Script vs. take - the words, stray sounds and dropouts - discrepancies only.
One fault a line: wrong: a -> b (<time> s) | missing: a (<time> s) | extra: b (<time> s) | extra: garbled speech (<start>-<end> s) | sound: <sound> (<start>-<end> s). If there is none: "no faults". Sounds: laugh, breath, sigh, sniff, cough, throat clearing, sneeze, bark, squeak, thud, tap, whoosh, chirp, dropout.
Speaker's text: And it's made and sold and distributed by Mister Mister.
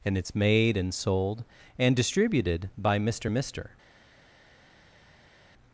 no faults